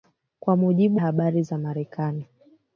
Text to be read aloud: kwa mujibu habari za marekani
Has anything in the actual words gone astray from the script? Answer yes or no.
no